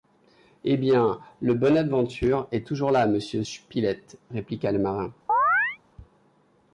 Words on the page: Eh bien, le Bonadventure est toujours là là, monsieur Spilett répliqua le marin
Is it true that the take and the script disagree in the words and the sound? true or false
true